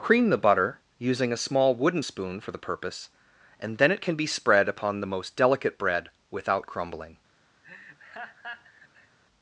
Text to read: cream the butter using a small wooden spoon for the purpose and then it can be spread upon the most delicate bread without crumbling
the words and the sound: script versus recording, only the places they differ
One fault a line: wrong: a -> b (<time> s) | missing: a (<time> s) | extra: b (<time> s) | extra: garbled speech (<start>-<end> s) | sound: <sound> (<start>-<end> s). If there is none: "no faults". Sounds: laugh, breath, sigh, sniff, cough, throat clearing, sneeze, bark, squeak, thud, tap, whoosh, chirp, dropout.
sound: laugh (7.6-9.2 s)